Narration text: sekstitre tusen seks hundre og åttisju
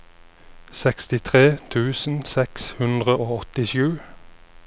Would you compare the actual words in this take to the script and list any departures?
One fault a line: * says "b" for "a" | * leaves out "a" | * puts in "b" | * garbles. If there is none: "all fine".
all fine